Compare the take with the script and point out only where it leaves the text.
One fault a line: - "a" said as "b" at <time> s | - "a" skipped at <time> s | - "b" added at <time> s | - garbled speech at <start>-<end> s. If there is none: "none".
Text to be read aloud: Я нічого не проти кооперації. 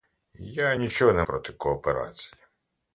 none